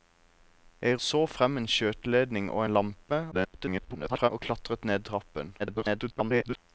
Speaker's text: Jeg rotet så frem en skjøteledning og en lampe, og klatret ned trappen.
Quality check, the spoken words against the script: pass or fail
fail